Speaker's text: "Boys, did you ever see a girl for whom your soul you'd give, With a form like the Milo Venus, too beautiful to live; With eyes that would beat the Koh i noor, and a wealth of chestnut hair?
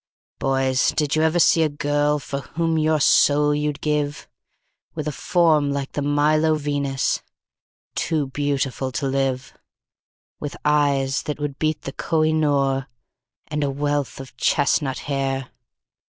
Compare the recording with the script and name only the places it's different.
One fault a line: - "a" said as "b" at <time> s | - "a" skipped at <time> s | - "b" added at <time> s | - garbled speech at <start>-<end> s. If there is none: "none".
none